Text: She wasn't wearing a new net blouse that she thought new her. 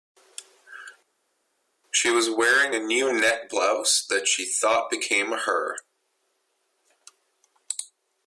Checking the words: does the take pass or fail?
fail